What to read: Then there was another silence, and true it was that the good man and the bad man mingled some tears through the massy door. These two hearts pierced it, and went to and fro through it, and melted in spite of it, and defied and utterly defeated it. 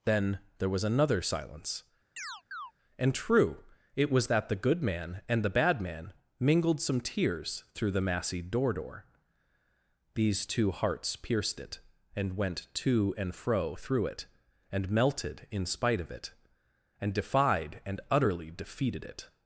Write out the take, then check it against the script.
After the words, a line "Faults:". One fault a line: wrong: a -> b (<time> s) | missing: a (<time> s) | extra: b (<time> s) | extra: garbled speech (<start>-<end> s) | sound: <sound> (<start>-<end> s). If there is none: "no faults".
Then there was another silence, and true it was that the good man and the bad man mingled some tears through the massy door door. These two hearts pierced it, and went to and fro through it, and melted in spite of it, and defied and utterly defeated it.
Faults:
sound: chirp (2.2-2.7 s)
extra: door (8.7 s)